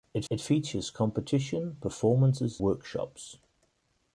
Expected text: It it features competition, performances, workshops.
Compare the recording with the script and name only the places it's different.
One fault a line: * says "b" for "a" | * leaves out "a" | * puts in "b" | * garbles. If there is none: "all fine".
all fine